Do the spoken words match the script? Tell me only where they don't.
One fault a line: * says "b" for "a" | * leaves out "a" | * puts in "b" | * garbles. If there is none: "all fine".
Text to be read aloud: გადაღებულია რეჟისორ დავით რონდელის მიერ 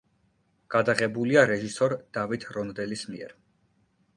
all fine